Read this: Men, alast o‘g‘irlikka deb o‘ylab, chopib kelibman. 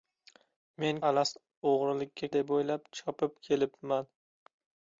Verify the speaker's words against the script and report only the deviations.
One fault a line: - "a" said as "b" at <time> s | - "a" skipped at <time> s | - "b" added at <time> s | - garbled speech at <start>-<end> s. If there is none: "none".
none